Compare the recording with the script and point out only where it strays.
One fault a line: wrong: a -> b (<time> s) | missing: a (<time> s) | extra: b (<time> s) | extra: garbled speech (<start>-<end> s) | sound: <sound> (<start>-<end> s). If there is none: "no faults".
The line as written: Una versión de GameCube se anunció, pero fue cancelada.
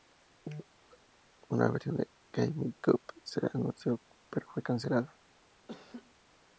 sound: laugh (5.7-6.1 s)